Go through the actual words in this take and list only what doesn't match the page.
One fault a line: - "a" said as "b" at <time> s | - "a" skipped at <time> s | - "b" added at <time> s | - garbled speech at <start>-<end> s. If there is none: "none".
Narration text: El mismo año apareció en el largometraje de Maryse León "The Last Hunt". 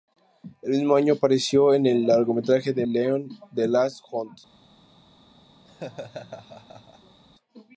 - "Maryse" skipped at 2.9 s